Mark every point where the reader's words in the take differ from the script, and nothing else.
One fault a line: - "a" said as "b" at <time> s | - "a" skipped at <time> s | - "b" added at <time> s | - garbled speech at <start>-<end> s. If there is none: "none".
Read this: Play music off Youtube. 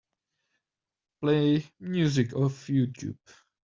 none